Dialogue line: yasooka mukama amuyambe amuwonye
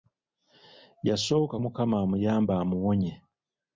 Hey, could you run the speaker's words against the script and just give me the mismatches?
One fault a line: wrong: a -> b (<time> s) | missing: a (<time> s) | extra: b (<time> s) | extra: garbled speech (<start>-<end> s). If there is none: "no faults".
no faults